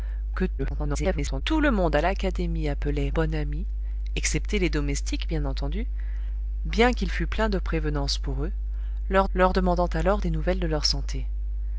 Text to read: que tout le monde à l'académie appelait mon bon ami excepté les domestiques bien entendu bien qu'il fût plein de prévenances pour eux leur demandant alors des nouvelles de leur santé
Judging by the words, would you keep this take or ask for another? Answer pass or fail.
fail